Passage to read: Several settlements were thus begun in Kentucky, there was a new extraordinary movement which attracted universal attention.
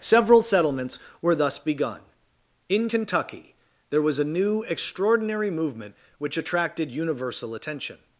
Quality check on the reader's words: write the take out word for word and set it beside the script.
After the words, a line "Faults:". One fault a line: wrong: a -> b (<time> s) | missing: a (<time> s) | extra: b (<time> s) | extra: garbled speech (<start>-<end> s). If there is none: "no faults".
Several settlements were thus begun in Kentucky, there was a new extraordinary movement which attracted universal attention.
Faults:
no faults